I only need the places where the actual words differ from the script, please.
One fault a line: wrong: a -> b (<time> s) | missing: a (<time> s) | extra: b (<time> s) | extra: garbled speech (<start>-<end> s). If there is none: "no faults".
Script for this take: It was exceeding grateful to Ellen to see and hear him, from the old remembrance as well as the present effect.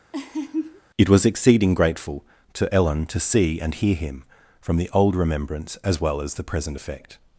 no faults